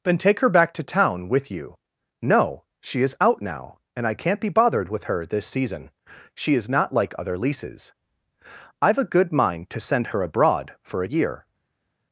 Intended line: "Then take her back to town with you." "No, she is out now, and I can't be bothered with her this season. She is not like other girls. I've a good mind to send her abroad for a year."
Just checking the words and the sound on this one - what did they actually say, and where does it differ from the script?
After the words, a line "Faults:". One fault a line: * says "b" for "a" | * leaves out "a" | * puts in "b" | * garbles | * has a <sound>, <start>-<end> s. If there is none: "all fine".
"Then take her back to town with you." "No, she is out now, and I can't be bothered with her this season. She is not like other leases. I've a good mind to send her abroad for a year."
Faults:
* says "leases" for "girls"